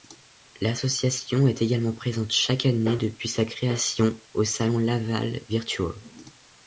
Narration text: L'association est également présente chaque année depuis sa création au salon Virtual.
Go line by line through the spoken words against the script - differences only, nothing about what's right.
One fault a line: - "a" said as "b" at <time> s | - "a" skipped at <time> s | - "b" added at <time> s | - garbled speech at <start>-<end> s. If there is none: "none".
- "Laval" added at 4.8 s